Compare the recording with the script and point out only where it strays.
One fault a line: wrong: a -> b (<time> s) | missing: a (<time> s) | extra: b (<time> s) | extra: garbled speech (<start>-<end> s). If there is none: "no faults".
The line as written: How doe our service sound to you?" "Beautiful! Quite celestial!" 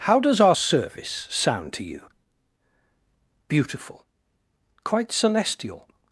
wrong: doe -> does (0.2 s)